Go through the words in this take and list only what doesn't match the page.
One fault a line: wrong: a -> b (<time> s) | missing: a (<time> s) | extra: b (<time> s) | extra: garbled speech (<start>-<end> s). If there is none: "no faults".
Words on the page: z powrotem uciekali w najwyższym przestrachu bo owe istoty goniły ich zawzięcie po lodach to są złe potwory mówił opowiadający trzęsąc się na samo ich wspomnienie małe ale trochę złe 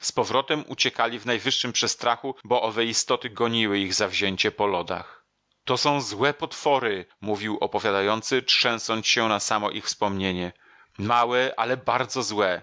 wrong: trochę -> bardzo (11.8 s)